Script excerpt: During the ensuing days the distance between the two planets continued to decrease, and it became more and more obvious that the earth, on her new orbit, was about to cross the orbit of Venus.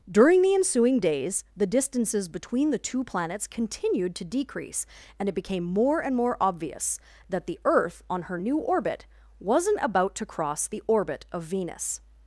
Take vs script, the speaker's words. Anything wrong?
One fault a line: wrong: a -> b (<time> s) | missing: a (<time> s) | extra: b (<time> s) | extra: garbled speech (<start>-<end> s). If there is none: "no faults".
wrong: distance -> distances (1.7 s)
wrong: was -> wasn't (9.4 s)